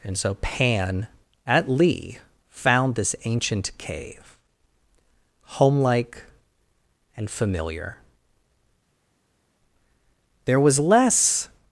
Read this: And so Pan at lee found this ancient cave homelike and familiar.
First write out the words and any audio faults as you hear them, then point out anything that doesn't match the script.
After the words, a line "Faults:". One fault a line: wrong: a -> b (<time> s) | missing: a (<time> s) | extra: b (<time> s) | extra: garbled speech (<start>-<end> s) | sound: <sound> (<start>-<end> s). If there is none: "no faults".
And so Pan at lee found this ancient cave homelike and familiar. There was less
Faults:
extra: There was less (10.4 s)